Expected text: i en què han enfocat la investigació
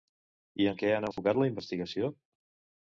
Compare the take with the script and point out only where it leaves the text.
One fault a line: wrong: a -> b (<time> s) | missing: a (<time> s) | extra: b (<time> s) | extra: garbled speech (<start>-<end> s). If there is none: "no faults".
no faults